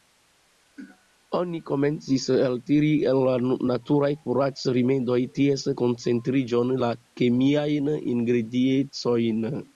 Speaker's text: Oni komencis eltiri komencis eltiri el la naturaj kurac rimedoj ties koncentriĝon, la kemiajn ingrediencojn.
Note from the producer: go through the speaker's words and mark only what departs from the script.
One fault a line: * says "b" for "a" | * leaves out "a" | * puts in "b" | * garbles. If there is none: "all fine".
* leaves out "komencis eltiri"